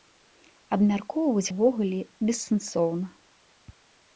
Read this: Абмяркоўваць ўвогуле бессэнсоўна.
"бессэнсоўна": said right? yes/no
yes